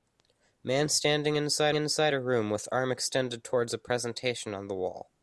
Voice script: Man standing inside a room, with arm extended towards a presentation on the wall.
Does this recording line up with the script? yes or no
no